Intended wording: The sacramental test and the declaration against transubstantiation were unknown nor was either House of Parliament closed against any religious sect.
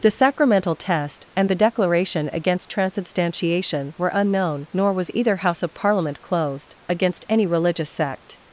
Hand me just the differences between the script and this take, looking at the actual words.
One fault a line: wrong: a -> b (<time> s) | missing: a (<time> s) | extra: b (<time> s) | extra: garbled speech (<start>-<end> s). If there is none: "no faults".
no faults